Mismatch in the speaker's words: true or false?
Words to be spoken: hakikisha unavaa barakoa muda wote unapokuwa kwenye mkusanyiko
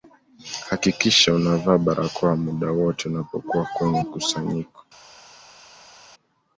false